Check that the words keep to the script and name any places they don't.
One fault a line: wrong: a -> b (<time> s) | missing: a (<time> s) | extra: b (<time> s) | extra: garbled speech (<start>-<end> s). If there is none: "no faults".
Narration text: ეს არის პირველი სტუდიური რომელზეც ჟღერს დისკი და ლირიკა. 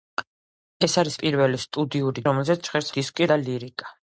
no faults